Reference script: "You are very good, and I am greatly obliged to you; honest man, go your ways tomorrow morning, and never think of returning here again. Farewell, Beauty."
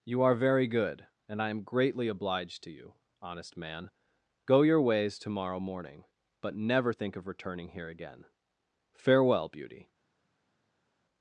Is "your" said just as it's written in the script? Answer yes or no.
yes